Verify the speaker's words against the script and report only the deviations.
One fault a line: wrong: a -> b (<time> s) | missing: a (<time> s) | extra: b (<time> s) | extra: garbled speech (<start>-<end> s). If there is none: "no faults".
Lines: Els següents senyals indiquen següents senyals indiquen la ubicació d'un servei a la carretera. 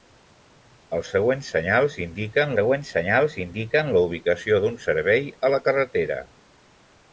no faults